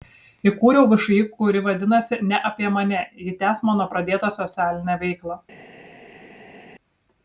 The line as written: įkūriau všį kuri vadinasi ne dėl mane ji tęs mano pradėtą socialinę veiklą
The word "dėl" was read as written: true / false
false